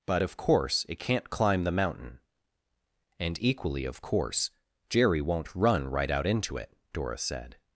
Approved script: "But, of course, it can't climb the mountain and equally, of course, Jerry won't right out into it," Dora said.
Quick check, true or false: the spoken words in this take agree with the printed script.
false